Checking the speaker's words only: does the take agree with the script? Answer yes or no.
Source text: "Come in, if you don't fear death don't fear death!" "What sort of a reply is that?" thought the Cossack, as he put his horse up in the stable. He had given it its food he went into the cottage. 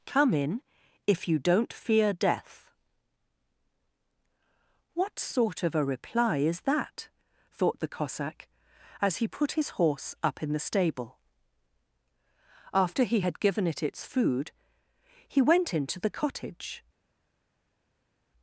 no